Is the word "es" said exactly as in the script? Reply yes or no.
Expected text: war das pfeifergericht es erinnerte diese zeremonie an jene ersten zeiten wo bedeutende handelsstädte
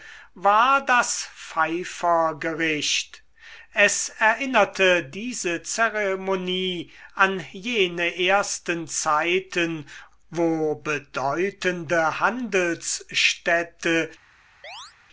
yes